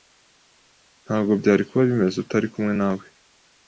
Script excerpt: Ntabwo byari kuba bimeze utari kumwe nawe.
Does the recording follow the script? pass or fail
pass